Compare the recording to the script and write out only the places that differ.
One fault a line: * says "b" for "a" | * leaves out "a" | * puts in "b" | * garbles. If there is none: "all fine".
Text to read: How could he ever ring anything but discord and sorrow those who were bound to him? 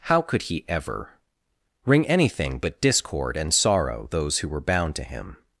all fine